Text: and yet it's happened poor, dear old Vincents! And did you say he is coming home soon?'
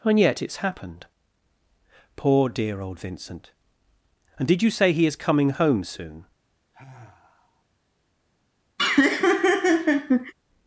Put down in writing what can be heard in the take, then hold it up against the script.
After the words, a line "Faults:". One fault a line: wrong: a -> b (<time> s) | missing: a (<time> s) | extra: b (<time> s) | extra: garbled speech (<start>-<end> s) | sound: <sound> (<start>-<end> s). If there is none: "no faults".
and yet it's happened poor, dear old Vincent! And did you say he is coming home soon?'
Faults:
wrong: Vincents -> Vincent (3.0 s)
sound: sigh (6.7-7.6 s)
sound: laugh (8.8-10.3 s)